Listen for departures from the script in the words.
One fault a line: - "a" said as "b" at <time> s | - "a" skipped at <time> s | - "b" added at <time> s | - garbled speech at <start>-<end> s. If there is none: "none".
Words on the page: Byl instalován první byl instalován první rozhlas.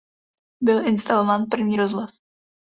- "byl instalován první" skipped at 1.8 s